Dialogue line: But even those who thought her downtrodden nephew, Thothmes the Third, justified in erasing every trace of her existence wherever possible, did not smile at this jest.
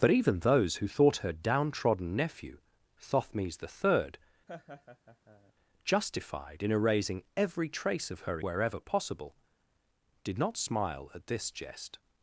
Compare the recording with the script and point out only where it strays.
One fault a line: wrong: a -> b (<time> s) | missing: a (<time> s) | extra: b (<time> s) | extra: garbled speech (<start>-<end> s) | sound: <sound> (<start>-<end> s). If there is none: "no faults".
sound: laugh (4.5-5.5 s)
missing: existence (8.4 s)